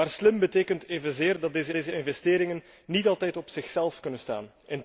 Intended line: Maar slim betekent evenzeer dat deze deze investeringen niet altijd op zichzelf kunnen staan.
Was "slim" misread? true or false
false